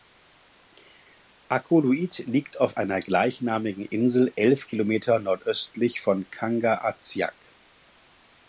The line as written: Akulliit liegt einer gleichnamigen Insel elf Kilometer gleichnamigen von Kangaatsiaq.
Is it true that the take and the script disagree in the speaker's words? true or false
true